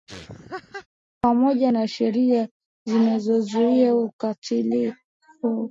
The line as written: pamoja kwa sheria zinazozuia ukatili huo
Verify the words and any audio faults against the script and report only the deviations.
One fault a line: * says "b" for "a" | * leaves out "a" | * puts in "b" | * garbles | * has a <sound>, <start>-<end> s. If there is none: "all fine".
* has a laugh, 0.1-0.9 s
* says "na" for "kwa"